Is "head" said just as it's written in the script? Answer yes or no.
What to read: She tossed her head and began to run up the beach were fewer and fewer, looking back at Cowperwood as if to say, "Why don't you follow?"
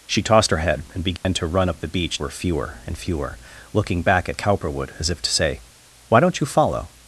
yes